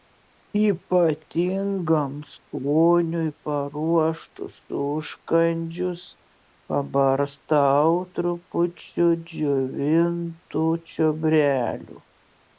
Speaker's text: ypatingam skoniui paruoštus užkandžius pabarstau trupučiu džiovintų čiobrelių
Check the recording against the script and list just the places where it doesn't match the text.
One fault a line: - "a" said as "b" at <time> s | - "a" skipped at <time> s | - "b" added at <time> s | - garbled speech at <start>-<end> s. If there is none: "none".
none